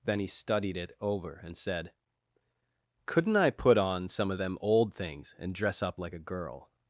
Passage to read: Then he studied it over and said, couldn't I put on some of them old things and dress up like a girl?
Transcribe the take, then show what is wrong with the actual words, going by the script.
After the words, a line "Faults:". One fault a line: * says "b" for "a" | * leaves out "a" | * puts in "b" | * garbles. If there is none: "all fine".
Then he studied it over and said, couldn't I put on some of them old things and dress up like a girl?
Faults:
all fine